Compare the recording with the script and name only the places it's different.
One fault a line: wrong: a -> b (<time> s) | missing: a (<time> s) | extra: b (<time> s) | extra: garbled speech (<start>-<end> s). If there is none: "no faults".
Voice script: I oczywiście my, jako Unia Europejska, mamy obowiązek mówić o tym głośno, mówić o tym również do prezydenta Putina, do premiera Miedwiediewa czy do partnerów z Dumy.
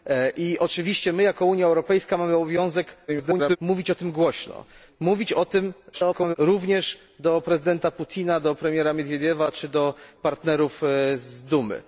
extra: garbled speech (3.1-3.6 s)
extra: garbled speech (5.9-6.4 s)